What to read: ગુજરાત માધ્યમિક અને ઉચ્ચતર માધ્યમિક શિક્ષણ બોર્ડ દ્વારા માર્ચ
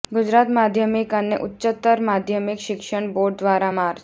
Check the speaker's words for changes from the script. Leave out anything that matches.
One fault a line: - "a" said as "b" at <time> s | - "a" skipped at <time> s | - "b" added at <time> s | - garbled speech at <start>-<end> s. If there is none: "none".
none